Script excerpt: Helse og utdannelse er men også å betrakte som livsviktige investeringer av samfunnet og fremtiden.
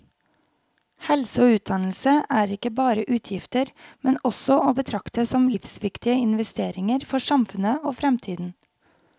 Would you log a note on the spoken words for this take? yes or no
yes